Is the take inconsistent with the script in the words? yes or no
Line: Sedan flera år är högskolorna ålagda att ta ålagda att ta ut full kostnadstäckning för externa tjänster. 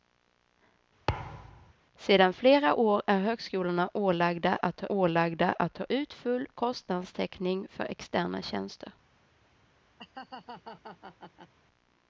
no